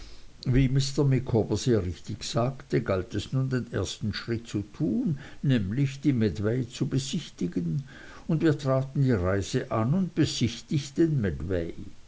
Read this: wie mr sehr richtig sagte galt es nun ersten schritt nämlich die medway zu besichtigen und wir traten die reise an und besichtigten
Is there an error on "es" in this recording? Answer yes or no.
no